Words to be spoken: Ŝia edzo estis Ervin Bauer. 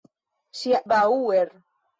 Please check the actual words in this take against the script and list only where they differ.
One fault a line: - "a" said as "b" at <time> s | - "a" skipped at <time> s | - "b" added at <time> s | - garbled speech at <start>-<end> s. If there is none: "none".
- "edzo estis Ervin" skipped at 0.8 s